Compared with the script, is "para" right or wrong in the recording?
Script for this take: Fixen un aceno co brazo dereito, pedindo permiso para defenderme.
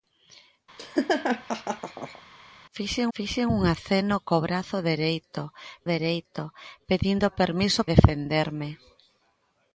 wrong